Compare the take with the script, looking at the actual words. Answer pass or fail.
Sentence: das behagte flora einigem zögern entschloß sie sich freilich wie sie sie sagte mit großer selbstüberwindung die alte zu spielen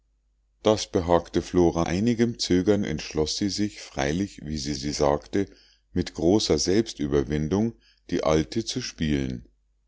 pass